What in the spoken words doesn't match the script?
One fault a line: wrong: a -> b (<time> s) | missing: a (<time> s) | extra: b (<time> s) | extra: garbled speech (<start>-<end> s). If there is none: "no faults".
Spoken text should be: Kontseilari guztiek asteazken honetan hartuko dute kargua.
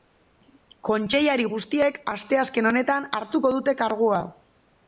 no faults